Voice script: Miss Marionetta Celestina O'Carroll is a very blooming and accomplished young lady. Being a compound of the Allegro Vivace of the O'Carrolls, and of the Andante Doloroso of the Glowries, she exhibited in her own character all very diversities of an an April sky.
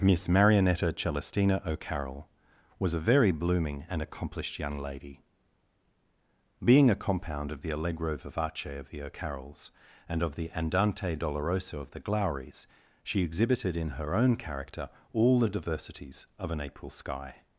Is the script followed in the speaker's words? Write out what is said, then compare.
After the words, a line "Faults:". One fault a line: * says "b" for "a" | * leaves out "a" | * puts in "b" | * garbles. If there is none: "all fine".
Miss Marionetta Celestina O'Carroll was a very blooming and accomplished young lady. Being a compound of the Allegro Vivace of the O'Carrolls, and of the Andante Doloroso of the Glowries, she exhibited in her own character all the diversities of an April sky.
Faults:
* says "was" for "is"
* says "the" for "very"
* leaves out "an"